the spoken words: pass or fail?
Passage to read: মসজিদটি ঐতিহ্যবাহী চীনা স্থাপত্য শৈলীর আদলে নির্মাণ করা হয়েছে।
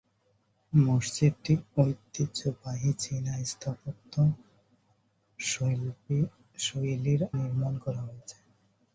fail